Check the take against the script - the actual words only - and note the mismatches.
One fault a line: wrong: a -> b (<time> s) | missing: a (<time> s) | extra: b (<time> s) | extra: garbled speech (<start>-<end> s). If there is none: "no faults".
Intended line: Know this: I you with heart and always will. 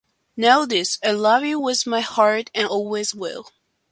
extra: love (1.1 s)
extra: my (1.9 s)